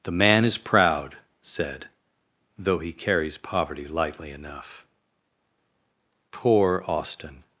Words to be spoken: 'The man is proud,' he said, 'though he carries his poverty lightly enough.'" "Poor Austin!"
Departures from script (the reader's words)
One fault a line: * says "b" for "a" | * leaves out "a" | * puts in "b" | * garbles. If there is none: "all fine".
* leaves out "he"
* leaves out "his"